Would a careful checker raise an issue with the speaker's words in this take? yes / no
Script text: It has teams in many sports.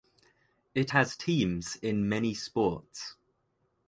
no